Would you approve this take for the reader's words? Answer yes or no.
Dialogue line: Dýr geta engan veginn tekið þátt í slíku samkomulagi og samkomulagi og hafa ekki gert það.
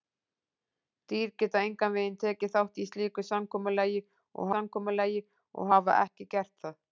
yes